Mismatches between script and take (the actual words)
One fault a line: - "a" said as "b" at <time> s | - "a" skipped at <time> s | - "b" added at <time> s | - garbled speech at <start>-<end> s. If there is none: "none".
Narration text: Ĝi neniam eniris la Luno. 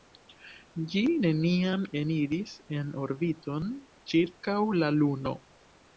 - "en orbiton ĉirkaŭ" added at 2.8 s